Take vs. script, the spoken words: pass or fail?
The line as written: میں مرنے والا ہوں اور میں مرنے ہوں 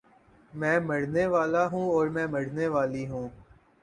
fail